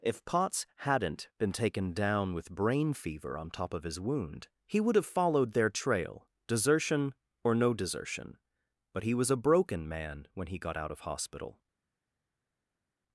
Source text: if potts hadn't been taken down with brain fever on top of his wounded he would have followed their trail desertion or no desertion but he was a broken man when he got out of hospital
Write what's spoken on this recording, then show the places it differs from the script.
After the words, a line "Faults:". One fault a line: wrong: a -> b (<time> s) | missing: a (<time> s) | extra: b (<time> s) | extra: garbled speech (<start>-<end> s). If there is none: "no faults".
if potts hadn't been taken down with brain fever on top of his wound he would have followed their trail desertion or no desertion but he was a broken man when he got out of hospital
Faults:
wrong: wounded -> wound (4.0 s)